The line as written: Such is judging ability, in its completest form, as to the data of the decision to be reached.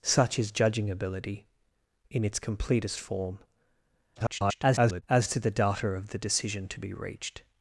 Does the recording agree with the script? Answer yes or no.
no